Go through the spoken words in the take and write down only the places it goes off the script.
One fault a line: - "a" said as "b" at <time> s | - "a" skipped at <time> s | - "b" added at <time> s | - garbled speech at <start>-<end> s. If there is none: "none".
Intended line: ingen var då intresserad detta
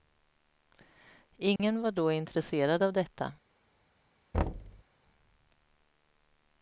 - "av" added at 2.8 s